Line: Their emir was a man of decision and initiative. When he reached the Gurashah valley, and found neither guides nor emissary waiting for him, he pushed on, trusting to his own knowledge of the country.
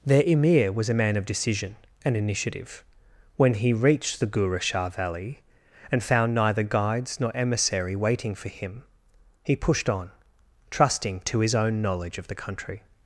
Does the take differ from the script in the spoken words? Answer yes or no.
no